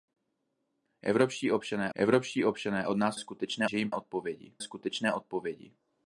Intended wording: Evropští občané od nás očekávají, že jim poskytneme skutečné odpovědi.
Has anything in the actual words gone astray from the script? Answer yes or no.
yes